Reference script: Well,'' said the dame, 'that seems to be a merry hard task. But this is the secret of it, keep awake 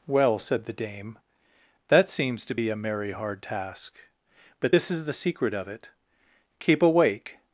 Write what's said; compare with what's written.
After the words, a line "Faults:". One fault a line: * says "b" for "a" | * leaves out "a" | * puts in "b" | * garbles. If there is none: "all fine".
Well,'' said the dame, 'that seems to be a merry hard task. But this is the secret of it, keep awake
Faults:
all fine